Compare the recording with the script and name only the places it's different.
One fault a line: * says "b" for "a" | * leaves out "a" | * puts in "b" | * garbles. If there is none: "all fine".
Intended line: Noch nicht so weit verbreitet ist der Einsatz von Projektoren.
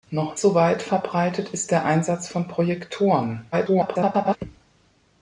* leaves out "nicht"
* garbles